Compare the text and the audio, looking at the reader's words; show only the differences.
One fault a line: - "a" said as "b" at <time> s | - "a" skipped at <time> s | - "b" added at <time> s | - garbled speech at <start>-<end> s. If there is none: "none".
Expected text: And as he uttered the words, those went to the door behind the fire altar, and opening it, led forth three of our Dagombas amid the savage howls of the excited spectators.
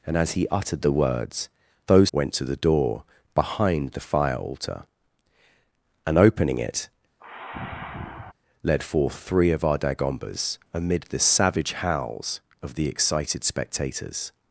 none